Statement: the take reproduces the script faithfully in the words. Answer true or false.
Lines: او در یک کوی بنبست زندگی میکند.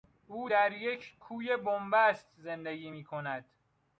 true